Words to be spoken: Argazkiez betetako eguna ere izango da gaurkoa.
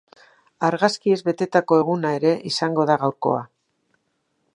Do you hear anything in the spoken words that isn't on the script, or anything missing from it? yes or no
no